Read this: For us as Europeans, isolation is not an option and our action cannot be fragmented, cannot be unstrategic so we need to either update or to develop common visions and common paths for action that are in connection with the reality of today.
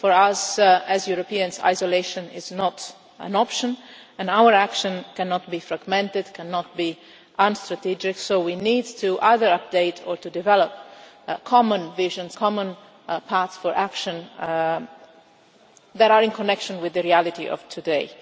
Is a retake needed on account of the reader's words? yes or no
yes